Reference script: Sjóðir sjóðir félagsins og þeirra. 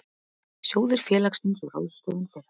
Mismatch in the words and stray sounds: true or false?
true